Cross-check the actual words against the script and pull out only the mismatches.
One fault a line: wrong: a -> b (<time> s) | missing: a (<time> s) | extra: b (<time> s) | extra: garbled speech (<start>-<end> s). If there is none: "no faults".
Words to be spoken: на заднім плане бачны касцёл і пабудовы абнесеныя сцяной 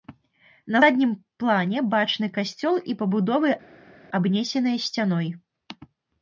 no faults